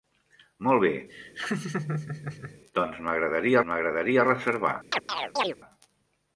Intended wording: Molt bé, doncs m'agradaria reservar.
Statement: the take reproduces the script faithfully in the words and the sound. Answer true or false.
false